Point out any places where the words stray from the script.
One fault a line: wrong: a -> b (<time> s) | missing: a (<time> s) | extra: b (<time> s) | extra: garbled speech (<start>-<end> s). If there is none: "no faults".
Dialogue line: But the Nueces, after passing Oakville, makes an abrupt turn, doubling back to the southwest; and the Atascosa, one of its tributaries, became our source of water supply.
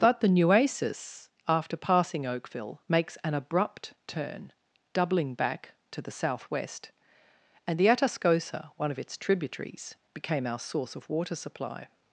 no faults